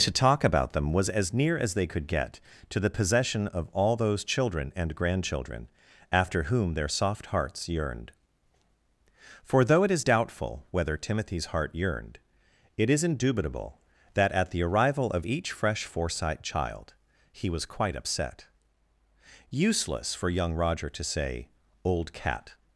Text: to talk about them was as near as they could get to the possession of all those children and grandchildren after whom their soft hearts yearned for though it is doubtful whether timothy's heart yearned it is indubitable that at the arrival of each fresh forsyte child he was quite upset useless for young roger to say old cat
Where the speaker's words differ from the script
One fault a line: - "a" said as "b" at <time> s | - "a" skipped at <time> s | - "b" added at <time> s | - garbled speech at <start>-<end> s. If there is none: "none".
none